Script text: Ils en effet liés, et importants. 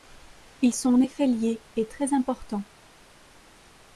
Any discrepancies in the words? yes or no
yes